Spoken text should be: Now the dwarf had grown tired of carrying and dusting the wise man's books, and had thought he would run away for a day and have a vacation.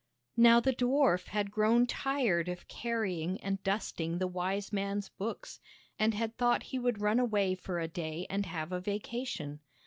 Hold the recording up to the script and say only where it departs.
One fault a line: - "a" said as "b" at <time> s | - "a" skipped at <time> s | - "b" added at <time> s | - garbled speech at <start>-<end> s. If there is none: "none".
none